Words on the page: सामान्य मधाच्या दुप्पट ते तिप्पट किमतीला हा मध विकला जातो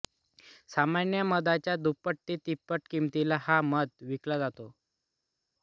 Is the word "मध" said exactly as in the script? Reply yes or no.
yes